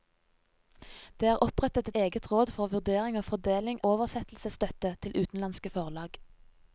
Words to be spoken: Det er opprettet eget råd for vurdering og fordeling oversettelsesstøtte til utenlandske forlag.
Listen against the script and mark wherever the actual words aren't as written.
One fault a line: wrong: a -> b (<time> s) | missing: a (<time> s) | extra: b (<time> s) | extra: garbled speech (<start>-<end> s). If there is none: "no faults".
no faults